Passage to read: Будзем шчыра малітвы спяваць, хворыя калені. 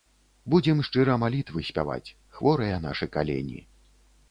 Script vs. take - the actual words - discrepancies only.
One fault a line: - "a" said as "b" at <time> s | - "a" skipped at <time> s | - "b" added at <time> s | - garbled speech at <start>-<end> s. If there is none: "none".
- "нашы" added at 2.9 s